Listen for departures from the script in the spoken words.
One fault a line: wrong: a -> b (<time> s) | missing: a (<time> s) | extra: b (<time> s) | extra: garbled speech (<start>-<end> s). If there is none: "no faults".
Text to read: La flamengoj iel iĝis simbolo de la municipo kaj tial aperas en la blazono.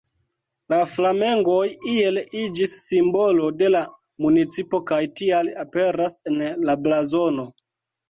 no faults